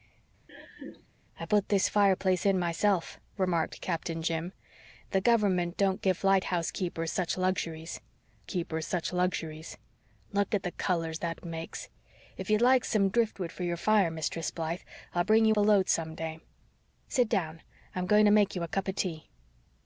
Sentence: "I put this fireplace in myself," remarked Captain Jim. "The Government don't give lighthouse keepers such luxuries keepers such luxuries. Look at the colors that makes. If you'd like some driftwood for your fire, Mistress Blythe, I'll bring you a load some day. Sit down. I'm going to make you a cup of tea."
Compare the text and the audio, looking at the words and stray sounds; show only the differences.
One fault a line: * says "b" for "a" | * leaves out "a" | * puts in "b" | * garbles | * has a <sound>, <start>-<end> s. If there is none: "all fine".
* has a laugh, 0.5-1.1 s